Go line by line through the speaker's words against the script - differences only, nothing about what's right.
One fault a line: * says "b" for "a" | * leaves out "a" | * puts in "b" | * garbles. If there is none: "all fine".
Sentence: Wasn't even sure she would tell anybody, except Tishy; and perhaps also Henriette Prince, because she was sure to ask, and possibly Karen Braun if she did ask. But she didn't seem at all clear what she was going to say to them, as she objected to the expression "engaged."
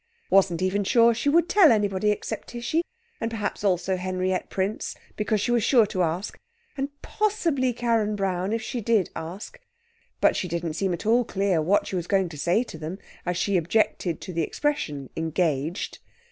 all fine